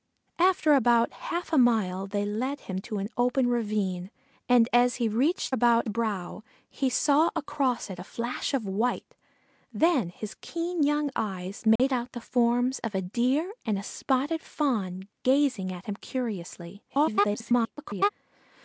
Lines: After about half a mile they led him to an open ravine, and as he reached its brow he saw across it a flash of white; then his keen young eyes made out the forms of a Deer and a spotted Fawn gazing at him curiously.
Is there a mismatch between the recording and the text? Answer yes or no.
yes